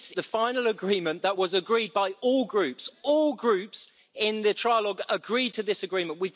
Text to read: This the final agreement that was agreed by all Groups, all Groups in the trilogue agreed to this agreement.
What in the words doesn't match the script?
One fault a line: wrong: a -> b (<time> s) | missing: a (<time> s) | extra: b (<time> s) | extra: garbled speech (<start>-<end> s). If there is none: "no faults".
no faults